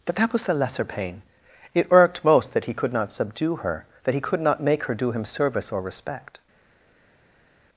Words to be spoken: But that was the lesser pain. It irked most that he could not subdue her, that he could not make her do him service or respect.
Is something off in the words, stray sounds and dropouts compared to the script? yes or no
no